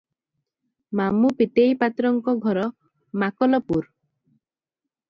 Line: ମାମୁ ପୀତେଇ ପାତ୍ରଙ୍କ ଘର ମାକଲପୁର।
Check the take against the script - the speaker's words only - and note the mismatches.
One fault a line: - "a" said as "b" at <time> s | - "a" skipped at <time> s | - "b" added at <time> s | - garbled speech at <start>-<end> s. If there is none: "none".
none